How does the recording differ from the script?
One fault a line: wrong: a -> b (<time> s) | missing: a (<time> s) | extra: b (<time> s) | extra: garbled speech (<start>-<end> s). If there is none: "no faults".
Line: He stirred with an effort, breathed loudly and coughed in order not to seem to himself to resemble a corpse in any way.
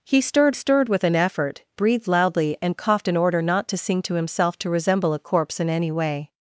extra: stirred (0.5 s)